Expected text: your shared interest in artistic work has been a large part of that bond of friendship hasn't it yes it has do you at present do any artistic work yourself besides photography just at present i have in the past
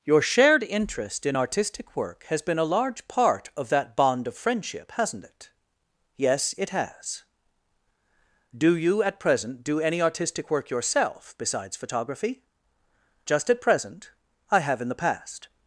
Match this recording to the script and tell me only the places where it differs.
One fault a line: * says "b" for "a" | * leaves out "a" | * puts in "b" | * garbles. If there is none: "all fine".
all fine